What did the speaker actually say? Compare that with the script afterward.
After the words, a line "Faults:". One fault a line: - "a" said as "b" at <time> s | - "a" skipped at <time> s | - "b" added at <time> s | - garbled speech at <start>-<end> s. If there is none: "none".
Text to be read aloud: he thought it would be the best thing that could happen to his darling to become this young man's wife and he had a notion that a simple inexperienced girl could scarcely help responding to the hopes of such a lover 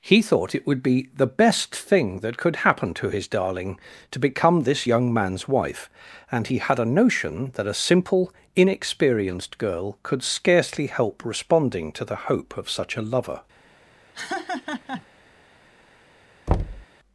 he thought it would be the best thing that could happen to his darling to become this young man's wife and he had a notion that a simple inexperienced girl could scarcely help responding to the hope of such a lover
Faults:
- "hopes" said as "hope" at 12.2 s